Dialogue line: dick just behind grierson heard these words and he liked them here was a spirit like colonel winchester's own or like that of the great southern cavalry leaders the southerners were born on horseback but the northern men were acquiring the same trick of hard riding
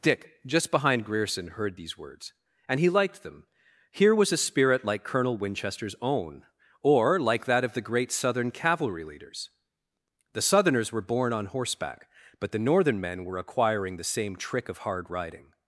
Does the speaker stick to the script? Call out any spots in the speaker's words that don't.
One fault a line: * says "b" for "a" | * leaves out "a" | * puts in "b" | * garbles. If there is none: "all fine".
all fine